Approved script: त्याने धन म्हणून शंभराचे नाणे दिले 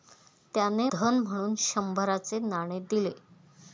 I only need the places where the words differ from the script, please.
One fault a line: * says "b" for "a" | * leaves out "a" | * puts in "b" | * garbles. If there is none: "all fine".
all fine